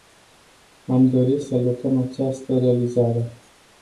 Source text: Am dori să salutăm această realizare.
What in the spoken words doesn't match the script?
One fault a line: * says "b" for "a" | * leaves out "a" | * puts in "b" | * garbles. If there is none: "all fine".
* leaves out "să"